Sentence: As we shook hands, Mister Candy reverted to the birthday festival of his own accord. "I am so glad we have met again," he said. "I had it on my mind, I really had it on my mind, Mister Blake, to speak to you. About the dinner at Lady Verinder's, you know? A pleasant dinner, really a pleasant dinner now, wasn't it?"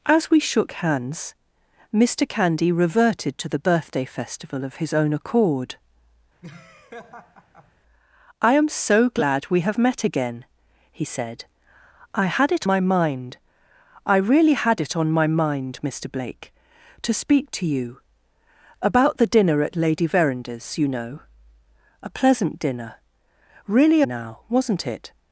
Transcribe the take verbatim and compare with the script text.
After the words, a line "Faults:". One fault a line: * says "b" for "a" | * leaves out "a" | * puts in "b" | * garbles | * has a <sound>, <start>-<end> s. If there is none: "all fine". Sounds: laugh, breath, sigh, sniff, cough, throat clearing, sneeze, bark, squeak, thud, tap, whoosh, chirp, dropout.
As we shook hands, Mister Candy reverted to the birthday festival of his own accord. "I am so glad we have met again," he said. "I had it my mind, I really had it on my mind, Mister Blake, to speak to you. About the dinner at Lady Verinder's, you know? A pleasant dinner, really now, wasn't it?"
Faults:
* has a laugh, 6.4-7.7 s
* leaves out "on"
* leaves out "a pleasant dinner"